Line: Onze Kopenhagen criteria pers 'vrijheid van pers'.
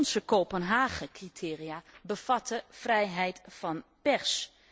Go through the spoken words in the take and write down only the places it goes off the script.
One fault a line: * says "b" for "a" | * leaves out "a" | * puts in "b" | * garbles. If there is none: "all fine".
* says "bevatten" for "pers"